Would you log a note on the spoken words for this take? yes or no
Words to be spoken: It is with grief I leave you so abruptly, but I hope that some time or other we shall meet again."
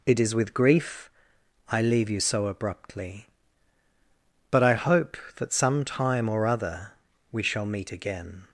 no